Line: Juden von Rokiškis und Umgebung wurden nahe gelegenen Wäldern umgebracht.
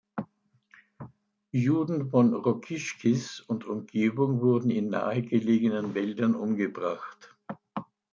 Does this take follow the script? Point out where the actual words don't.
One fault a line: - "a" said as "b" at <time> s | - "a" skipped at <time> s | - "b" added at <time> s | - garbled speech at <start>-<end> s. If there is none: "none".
- "in" added at 4.7 s